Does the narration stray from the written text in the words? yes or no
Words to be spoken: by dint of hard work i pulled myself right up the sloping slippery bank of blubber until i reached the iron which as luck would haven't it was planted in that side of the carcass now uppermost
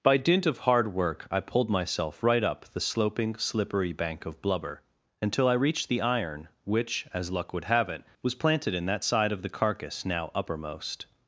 yes